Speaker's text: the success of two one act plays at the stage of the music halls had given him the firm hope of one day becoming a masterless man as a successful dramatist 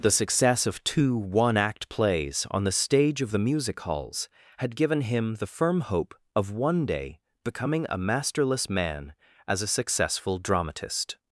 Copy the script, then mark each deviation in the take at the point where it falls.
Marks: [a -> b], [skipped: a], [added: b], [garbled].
the success of two one act plays [at -> on] the stage of the music halls had given him the firm hope of one day becoming a masterless man as a successful dramatist